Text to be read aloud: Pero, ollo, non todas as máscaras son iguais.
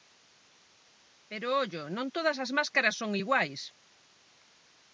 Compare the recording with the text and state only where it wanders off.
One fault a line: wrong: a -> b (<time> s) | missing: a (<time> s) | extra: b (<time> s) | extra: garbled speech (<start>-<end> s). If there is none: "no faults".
no faults